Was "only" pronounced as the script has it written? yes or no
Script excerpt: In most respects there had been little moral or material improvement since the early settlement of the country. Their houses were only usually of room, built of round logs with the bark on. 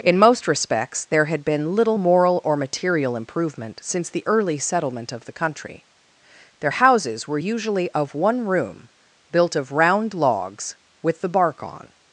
no